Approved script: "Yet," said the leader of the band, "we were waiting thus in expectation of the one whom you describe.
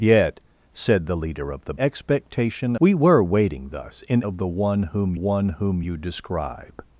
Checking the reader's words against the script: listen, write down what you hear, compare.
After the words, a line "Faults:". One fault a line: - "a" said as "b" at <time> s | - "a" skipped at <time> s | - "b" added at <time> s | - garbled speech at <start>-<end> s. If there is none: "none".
"Yet," said the leader of the expectation, "we were waiting thus in of the one whom one whom you describe.
Faults:
- "band" said as "expectation" at 1.8 s
- "expectation" skipped at 4.2 s
- "one whom" added at 5.1 s